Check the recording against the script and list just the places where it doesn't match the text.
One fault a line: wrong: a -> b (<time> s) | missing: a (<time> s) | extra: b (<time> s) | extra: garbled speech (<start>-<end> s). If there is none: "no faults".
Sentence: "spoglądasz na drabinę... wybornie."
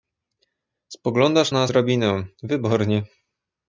no faults